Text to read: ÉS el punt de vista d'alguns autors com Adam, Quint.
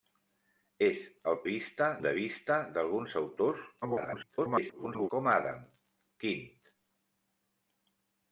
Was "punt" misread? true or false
true